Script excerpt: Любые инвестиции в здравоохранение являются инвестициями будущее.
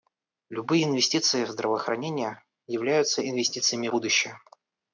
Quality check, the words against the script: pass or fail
pass